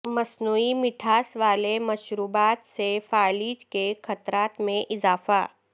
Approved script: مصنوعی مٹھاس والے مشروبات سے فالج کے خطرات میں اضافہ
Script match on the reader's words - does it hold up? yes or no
yes